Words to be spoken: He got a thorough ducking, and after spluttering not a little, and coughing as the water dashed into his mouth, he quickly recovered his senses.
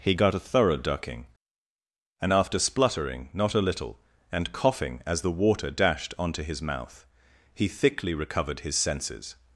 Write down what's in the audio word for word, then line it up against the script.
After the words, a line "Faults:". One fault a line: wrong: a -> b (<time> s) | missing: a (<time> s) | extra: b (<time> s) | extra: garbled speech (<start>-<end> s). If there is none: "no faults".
He got a thorough ducking, and after spluttering not a little, and coughing as the water dashed onto his mouth, he thickly recovered his senses.
Faults:
wrong: into -> onto (6.2 s)
wrong: quickly -> thickly (7.7 s)